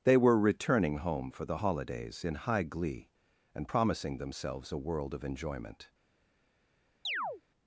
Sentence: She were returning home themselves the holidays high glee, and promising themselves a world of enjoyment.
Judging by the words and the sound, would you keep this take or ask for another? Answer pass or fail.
fail